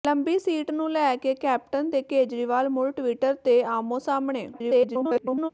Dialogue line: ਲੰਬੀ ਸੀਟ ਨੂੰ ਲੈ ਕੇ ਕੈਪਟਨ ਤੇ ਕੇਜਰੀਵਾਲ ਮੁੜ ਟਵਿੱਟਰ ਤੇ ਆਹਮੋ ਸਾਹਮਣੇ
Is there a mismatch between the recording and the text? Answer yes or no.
yes